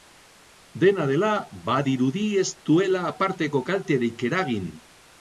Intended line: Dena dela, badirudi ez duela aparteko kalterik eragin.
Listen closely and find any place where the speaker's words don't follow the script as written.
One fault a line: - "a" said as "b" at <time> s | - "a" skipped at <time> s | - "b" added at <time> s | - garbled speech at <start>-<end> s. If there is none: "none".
none